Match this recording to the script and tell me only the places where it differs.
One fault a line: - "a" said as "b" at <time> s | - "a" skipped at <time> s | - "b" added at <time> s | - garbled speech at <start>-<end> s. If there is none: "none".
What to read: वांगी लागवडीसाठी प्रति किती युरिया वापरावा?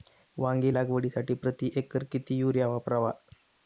- "एकर" added at 1.8 s